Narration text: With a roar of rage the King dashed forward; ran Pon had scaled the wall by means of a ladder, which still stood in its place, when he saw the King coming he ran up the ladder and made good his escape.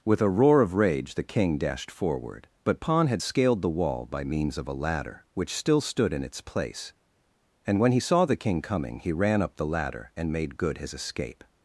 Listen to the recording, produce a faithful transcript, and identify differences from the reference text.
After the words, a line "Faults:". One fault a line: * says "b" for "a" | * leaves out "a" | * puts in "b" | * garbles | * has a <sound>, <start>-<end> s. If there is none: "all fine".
With a roar of rage the King dashed forward; but Pon had scaled the wall by means of a ladder, which still stood in its place, and when he saw the King coming he ran up the ladder and made good his escape.
Faults:
* says "but" for "ran"
* puts in "and"